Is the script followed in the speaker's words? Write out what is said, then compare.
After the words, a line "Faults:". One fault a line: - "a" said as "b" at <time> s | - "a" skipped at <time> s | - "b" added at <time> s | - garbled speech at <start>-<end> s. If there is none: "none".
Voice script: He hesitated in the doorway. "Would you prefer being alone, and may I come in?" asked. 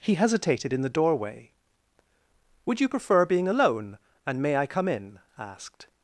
He hesitated in the doorway. "Would you prefer being alone, and may I come in?" asked.
Faults:
none